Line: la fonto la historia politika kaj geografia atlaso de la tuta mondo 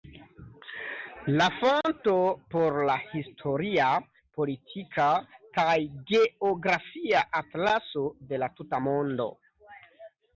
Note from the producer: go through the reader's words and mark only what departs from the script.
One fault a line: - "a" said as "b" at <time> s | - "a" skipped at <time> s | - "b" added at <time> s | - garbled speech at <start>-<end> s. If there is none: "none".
- "por" added at 2.5 s